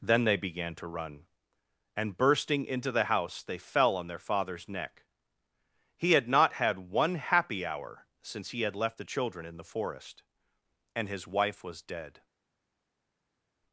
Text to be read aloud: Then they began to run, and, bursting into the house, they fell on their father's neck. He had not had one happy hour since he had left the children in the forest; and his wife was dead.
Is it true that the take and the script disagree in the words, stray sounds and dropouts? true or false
false